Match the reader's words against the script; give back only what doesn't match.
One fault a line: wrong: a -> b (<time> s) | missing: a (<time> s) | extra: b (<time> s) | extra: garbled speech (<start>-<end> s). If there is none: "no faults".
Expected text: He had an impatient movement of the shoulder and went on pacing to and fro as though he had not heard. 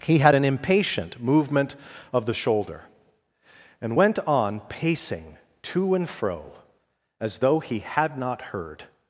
no faults